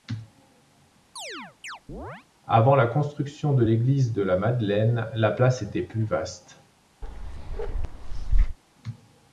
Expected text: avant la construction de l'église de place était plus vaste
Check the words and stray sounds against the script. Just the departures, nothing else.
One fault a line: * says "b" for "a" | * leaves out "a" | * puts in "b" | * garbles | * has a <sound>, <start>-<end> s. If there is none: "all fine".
* has a chirp, 1.2-2.3 s
* puts in "la madeleine la"
* has a bark, 7.0-8.6 s